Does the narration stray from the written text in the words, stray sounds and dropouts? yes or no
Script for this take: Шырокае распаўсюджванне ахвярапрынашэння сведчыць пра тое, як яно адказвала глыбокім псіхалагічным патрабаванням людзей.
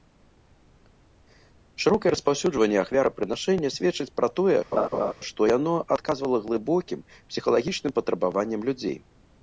yes